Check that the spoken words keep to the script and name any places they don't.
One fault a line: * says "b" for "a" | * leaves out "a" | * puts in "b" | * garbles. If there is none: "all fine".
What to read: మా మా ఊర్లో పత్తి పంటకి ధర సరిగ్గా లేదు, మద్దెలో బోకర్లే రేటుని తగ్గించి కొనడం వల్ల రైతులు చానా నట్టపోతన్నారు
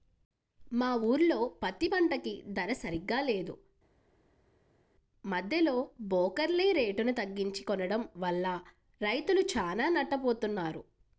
* leaves out "మా"